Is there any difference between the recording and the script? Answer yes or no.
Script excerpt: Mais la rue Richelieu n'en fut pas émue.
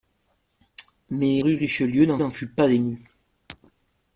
yes